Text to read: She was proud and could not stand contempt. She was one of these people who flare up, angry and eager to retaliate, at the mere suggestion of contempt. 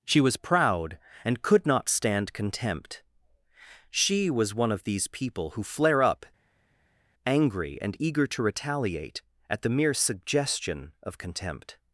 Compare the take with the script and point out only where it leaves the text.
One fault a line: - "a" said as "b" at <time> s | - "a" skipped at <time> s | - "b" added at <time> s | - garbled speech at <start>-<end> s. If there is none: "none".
none